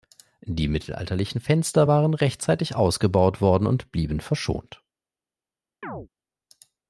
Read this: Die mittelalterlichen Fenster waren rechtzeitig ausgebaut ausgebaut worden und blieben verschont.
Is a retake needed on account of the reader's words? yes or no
yes